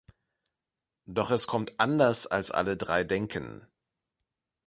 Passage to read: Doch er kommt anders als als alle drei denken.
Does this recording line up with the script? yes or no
no